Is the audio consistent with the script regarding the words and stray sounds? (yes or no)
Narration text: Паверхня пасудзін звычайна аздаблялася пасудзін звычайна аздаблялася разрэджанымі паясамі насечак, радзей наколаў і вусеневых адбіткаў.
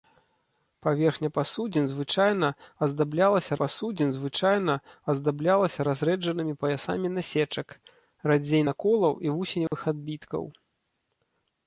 no